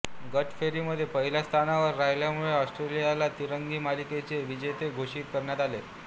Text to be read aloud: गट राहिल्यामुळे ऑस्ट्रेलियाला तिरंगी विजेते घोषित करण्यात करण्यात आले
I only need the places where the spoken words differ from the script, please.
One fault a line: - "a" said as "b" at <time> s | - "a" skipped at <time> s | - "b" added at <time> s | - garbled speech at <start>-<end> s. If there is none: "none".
- "फेरीमध्ये पहिल्या स्थानावर" added at 0.5 s
- "मालिकेचे" added at 3.8 s
- "करण्यात" skipped at 5.6 s